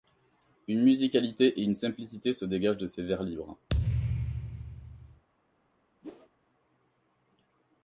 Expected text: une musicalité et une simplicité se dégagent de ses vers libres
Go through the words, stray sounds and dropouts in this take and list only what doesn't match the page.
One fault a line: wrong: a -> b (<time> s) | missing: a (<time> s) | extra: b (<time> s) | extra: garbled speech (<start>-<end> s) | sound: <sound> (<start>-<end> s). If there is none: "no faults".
sound: thud (3.7-5.2 s)
sound: whoosh (6.0-6.3 s)